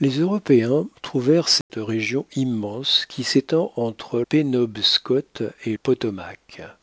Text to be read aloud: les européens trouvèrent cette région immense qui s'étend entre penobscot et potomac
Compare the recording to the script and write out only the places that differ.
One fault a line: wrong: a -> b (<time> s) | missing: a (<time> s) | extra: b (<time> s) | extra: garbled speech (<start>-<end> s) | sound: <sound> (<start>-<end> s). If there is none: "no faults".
sound: dropout (1.6-1.7 s)